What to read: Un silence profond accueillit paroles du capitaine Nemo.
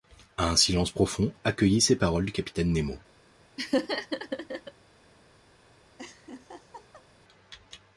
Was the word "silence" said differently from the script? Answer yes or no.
no